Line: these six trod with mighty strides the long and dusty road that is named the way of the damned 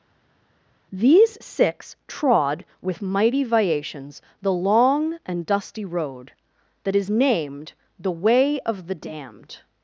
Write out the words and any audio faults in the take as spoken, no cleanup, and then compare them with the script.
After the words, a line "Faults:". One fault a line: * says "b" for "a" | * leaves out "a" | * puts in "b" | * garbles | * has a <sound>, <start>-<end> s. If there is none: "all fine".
these six trod with mighty viations the long and dusty road that is named the way of the damned
Faults:
* says "viations" for "strides"